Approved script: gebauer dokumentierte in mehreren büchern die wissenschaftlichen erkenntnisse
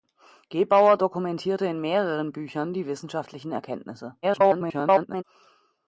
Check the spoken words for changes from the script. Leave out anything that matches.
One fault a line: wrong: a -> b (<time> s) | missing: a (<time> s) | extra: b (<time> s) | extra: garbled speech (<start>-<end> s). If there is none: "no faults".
extra: garbled speech (4.2-5.2 s)